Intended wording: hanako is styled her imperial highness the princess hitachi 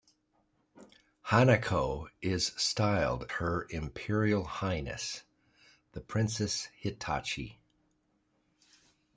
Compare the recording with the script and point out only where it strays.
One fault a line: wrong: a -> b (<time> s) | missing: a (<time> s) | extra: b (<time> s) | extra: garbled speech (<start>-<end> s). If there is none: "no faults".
no faults